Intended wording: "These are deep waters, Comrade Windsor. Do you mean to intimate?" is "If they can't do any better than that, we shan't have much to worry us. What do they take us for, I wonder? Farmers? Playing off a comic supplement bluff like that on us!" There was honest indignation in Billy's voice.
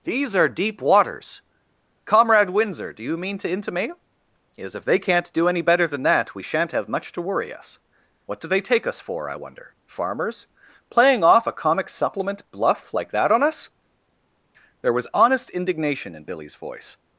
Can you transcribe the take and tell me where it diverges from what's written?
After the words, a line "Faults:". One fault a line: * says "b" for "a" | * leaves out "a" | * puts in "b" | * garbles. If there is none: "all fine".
"These are deep waters, Comrade Windsor. Do you mean to intimate?" is "If they can't do any better than that, we shan't have much to worry us. What do they take us for, I wonder? Farmers? Playing off a comic supplement bluff like that on us!" There was honest indignation in Billy's voice.
Faults:
all fine